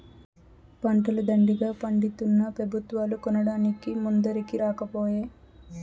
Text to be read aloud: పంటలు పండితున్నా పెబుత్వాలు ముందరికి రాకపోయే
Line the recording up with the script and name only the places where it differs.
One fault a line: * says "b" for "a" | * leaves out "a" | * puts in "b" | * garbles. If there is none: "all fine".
* puts in "దండిగా"
* puts in "కొనడానికి"